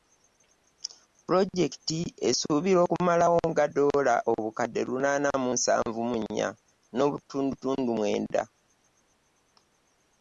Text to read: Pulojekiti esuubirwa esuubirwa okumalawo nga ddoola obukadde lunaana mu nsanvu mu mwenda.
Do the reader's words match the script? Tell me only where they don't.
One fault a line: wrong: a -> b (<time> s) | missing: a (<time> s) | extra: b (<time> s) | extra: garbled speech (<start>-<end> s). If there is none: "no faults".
missing: esuubirwa (2.8 s)
extra: nnya n'obutundutundu (6.2 s)